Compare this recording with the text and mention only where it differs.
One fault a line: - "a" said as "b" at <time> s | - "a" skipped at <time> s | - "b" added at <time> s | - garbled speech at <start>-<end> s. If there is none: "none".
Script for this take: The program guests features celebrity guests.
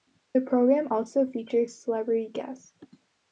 - "guests" said as "also" at 0.9 s